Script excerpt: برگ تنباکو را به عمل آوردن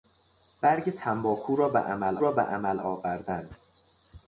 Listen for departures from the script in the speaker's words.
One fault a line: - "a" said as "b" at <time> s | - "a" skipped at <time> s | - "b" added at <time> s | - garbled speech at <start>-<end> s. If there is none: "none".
- "را به عمل" added at 2.2 s